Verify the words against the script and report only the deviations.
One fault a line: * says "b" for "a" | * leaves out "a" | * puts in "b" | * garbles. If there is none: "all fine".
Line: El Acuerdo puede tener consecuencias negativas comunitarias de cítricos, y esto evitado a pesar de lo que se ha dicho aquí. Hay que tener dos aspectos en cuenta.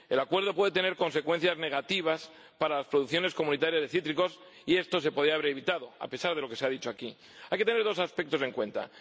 * puts in "para las producciones"
* puts in "se podía haber"